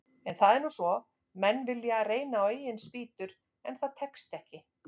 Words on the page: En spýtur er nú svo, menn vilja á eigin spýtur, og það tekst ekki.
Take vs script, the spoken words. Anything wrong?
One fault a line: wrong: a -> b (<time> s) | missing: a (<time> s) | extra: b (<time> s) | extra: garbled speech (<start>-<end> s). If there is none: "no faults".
wrong: spýtur -> það (0.4 s)
extra: reyna (2.1 s)
wrong: og -> en (3.7 s)